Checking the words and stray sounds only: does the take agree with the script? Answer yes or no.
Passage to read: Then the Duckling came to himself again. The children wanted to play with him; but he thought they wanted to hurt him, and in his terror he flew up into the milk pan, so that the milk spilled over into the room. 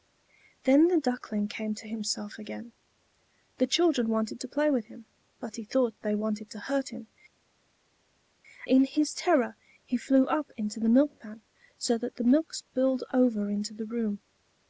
no